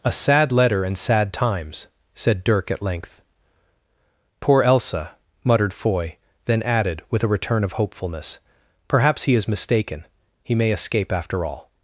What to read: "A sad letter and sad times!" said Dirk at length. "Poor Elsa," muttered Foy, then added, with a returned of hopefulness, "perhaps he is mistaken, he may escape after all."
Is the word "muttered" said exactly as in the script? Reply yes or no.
yes